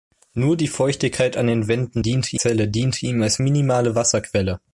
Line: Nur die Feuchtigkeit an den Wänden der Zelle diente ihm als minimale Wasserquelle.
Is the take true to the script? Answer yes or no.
no